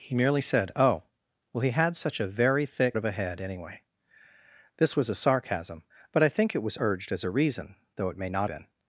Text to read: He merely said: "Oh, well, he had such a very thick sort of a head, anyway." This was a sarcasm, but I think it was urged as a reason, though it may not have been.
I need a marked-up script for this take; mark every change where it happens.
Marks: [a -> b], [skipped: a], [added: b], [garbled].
He merely said: "Oh, well, he had such a very thick [skipped: sort] of a head, anyway." This was a sarcasm, but I think it was urged as a reason, though it may not [skipped: have] been.